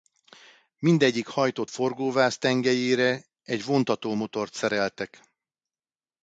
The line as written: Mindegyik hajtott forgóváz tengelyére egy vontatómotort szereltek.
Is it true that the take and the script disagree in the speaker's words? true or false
false